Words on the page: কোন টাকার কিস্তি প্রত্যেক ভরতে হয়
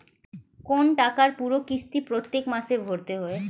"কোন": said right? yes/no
yes